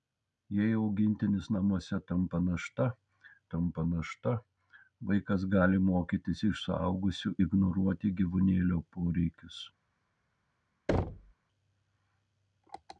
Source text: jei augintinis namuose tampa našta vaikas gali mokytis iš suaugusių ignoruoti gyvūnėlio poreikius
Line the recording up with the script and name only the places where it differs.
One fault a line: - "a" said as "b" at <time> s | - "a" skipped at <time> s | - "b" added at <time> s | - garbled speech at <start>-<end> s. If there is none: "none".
- "tampa našta" added at 3.5 s